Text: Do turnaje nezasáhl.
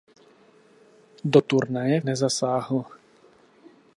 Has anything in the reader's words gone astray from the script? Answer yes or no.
no